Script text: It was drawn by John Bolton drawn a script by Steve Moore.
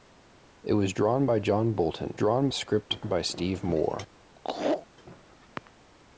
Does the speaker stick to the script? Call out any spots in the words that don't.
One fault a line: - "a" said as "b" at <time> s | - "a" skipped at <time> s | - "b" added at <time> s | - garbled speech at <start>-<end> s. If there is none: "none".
none